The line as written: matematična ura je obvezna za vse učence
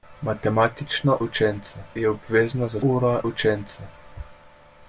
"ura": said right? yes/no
no